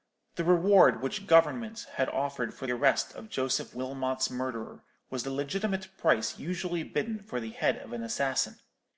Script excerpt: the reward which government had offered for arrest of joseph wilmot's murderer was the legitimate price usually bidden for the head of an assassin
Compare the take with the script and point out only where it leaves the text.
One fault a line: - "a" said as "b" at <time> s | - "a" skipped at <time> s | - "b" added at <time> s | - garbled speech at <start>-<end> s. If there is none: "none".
none